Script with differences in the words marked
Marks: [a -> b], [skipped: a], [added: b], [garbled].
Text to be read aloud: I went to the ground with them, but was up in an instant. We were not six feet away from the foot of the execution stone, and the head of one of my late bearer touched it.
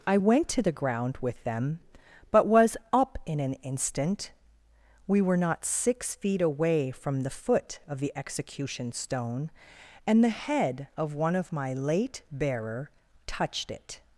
I went to the ground with them, but was up in an instant. We were not six feet away from the foot of the execution stone, and the head of one of my late bearer touched it.